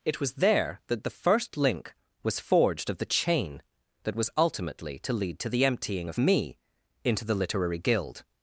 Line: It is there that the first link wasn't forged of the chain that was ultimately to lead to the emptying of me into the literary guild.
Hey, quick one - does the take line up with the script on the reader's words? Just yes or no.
no